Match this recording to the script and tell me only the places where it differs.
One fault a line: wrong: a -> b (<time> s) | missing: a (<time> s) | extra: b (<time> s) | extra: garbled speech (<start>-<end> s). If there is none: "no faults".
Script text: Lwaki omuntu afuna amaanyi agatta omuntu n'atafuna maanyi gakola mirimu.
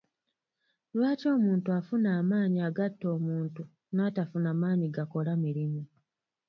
no faults